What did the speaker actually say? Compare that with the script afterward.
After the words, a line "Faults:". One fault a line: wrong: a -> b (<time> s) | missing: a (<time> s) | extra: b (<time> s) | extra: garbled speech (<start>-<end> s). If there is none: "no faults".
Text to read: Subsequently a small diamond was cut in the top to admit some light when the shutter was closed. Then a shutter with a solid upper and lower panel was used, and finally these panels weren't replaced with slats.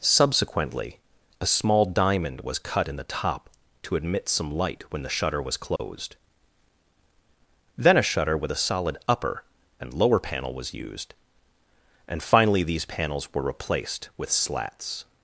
Subsequently a small diamond was cut in the top to admit some light when the shutter was closed. Then a shutter with a solid upper and lower panel was used, and finally these panels were replaced with slats.
Faults:
wrong: weren't -> were (13.3 s)